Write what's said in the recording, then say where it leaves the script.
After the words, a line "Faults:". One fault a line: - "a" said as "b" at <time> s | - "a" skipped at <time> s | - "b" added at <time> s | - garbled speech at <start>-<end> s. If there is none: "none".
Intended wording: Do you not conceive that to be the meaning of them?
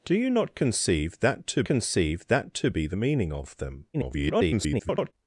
Do you not conceive that to conceive that to be the meaning of them? [garbled]
Faults:
- "conceive that to" added at 1.6 s
- garbled speech at 3.9-5.1 s